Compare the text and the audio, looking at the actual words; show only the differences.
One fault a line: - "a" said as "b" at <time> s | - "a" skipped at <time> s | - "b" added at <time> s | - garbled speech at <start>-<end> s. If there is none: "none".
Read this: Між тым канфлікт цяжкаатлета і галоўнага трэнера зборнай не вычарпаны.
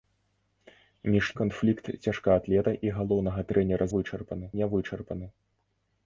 - "тым" skipped at 1.2 s
- "зборнай" said as "вычарпаны" at 4.0 s